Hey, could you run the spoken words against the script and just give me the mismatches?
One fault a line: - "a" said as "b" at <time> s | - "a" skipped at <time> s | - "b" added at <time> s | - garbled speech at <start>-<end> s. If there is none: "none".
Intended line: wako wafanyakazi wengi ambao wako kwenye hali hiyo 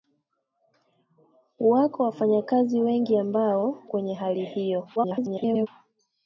- "wako" skipped at 3.8 s
- garbled speech at 5.0-5.7 s